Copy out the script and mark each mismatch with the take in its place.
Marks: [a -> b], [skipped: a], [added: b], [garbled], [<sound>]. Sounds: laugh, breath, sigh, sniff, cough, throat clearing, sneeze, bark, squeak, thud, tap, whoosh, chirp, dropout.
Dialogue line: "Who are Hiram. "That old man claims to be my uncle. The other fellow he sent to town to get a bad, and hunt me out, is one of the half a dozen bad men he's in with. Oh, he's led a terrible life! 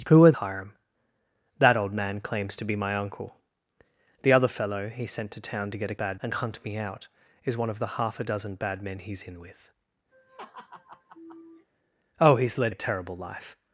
"Who are Hiram. "That old man claims to be my uncle. The other fellow he sent to town to get a bad, and hunt me out, is one of the half a dozen bad men he's in with. [laugh] Oh, he's led a terrible life!